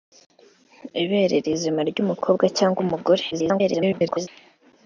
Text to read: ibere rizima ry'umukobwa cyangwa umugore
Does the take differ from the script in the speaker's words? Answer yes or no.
yes